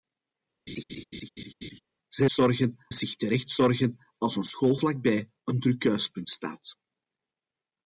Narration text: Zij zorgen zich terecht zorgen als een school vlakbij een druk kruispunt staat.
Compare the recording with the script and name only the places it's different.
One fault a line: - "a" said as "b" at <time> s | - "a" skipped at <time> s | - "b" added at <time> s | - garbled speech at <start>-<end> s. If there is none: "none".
none